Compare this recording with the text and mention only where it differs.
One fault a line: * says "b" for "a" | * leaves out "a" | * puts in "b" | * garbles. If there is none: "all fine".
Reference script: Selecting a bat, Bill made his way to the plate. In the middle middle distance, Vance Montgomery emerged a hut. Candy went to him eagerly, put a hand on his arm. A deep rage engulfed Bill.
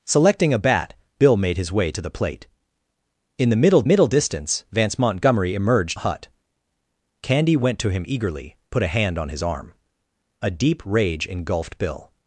all fine